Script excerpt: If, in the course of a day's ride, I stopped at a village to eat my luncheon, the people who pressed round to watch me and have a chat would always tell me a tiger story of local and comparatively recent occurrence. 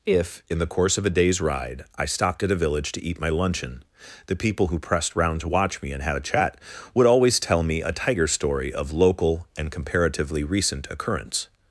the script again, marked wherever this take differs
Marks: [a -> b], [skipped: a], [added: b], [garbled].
If, in the course of a day's ride, I stopped at a village to eat my luncheon, the people who pressed round to watch me and [have -> had] a chat would always tell me a tiger story of local and comparatively recent occurrence.